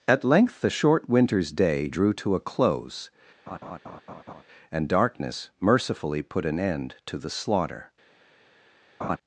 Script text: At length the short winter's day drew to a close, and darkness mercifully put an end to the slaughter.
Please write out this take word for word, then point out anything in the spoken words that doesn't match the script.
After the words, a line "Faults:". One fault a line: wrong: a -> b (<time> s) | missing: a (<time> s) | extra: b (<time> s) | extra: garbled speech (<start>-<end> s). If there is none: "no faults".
At length the short winter's day drew to a close, and darkness mercifully put an end to the slaughter.
Faults:
no faults